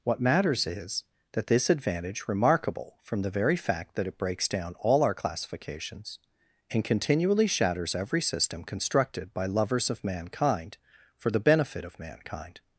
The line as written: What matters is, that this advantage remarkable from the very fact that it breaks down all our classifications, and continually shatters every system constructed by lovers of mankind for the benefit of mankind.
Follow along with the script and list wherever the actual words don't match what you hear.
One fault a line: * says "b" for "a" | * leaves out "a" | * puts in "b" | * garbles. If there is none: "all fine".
all fine